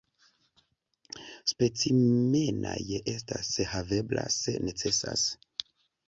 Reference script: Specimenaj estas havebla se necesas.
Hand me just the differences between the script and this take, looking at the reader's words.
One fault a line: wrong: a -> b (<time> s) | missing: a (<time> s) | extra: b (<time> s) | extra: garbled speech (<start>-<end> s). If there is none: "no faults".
no faults